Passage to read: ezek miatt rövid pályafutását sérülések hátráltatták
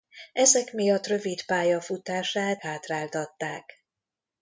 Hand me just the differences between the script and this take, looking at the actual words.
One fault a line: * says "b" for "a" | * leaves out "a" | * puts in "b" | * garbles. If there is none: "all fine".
* leaves out "sérülések"